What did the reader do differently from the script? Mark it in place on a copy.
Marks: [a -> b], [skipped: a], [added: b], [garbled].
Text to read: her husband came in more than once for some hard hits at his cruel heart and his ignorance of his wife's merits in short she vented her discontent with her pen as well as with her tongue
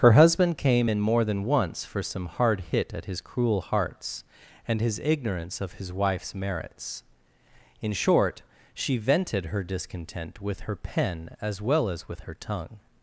her husband came in more than once for some hard [hits -> hit] at his cruel [heart -> hearts] and his ignorance of his wife's merits in short she vented her discontent with her pen as well as with her tongue